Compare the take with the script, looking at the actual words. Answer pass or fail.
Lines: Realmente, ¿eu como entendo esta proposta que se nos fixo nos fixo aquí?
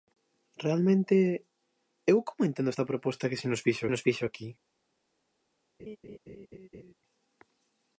pass